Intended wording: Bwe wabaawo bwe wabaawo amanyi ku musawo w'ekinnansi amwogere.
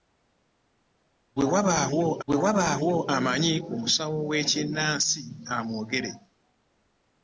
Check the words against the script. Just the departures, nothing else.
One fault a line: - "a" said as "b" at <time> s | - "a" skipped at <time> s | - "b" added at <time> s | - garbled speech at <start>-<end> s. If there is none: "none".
none